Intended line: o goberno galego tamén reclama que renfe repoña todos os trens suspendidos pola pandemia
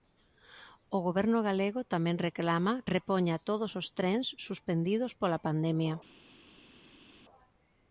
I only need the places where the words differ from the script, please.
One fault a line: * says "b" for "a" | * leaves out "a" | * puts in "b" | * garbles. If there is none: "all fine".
* leaves out "que renfe"